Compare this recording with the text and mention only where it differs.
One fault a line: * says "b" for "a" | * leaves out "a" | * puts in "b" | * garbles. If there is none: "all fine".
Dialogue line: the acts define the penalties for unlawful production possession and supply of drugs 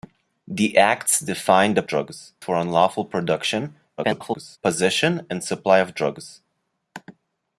* says "drugs" for "penalties"
* garbles